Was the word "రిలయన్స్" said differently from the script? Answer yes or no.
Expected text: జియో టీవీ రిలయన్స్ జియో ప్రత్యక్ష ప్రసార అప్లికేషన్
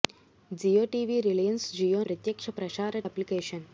no